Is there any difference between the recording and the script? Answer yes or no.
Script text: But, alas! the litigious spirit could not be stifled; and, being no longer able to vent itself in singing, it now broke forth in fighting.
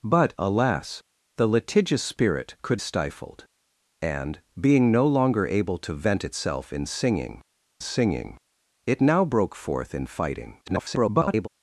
yes